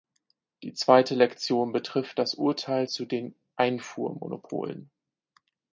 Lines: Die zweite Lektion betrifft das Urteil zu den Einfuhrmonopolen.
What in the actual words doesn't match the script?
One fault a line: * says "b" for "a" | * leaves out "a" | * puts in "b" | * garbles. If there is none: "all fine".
all fine